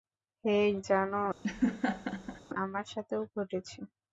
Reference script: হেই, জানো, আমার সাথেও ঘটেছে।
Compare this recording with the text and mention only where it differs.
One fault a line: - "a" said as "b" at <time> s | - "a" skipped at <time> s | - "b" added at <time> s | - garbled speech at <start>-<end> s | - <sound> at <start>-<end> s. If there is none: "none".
- laugh at 1.4-2.4 s